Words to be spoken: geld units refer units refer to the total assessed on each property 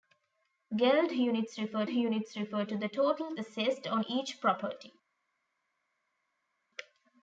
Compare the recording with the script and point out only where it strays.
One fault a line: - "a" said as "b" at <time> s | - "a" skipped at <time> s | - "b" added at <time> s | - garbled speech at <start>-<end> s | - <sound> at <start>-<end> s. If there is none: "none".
none